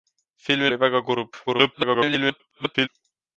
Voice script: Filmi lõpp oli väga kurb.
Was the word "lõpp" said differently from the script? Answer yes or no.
yes